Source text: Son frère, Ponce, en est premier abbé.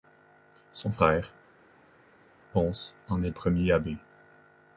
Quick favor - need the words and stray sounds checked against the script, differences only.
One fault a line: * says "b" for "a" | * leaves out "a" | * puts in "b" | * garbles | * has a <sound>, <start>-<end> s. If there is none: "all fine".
all fine